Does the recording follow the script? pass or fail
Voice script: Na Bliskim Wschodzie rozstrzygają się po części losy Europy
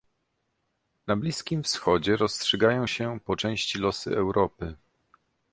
pass